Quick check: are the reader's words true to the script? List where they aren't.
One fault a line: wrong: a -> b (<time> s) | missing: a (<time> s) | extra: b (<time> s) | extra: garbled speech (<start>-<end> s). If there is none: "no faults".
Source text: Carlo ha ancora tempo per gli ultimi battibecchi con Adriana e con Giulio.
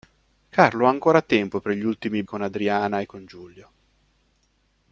missing: battibecchi (2.2 s)